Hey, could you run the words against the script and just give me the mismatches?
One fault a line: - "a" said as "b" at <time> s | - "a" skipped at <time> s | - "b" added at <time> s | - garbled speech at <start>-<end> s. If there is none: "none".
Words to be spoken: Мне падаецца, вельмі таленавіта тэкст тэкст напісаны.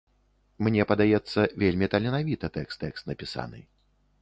none